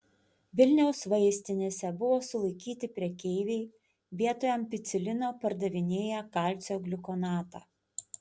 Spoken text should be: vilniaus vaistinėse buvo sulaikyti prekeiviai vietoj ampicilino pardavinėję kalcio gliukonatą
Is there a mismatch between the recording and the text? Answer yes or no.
no